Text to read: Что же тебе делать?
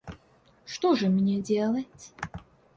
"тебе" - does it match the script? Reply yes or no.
no